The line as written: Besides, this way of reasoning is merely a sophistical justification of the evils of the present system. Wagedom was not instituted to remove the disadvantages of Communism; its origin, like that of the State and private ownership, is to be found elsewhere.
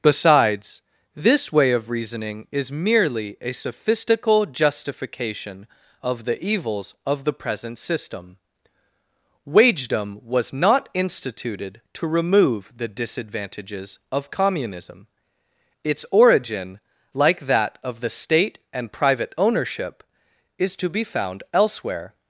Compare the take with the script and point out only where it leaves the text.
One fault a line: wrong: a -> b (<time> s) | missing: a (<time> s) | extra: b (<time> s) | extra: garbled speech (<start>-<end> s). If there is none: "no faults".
no faults